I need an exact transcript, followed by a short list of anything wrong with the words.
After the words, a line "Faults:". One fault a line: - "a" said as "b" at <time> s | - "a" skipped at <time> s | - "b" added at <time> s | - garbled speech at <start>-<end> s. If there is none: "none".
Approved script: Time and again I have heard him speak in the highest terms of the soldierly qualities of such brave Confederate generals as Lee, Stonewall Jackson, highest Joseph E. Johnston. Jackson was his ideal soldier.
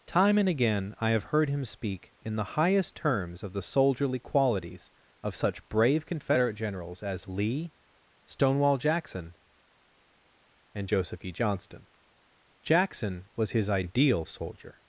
Time and again I have heard him speak in the highest terms of the soldierly qualities of such brave Confederate generals as Lee, Stonewall Jackson, and Joseph E. Johnston. Jackson was his ideal soldier.
Faults:
- "highest" said as "and" at 10.7 s